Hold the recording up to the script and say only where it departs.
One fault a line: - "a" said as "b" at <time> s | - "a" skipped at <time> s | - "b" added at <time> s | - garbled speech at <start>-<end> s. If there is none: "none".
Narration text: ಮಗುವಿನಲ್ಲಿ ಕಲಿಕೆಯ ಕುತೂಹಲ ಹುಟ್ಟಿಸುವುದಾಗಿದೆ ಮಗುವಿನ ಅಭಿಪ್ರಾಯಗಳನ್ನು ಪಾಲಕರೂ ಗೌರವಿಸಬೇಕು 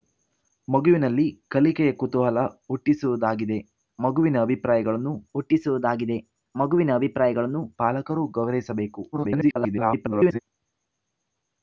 - "ಹುಟ್ಟಿಸುವುದಾಗಿದೆ ಮಗುವಿನ ಅಭಿಪ್ರಾಯಗಳನ್ನು" added at 5.3 s
- garbled speech at 9.1-10.4 s